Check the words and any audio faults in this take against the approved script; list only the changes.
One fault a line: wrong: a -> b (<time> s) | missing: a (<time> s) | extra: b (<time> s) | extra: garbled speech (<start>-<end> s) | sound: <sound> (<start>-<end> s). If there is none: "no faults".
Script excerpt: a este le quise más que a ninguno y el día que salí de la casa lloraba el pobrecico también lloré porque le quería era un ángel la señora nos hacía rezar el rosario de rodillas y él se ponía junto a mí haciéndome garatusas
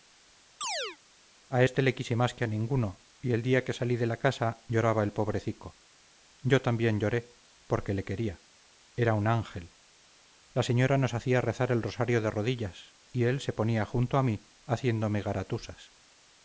sound: chirp (0.6-1.0 s)
extra: yo (6.4 s)